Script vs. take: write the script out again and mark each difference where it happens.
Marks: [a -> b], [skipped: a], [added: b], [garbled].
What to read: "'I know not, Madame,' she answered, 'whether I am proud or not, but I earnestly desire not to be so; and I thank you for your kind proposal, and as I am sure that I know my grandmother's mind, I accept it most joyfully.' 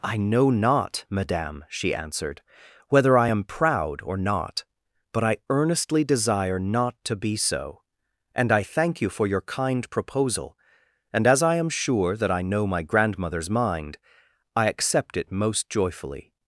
"'I know not, Madame,' she answered, 'whether I am proud or not, but I earnestly desire not to be so; and I thank you for your kind proposal, and as I am sure that I know my grandmother's mind, I accept it most joyfully.'